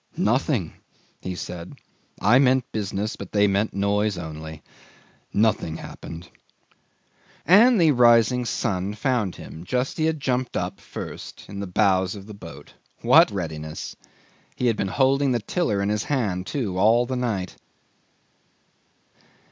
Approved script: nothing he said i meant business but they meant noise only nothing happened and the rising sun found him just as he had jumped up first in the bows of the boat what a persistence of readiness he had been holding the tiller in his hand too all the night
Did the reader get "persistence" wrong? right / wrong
wrong